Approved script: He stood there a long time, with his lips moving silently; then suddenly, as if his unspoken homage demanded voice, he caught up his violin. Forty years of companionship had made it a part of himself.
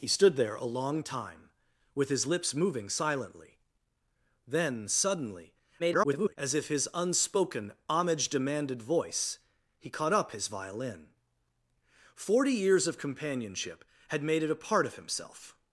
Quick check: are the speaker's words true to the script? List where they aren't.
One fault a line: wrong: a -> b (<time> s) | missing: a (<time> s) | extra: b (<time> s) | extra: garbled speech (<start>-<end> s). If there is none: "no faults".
extra: garbled speech (5.8-6.4 s)